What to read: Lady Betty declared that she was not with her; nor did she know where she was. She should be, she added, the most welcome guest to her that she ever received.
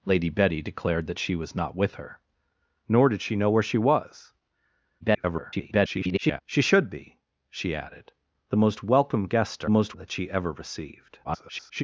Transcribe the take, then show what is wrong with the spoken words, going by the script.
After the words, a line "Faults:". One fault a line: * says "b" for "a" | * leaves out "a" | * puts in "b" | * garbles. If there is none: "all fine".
Lady Betty declared that she was not with her; nor did she know where she was. [garbled] She should be, she added, the most welcome guest to most that she ever received. [garbled]
Faults:
* garbles
* says "most" for "her"
* garbles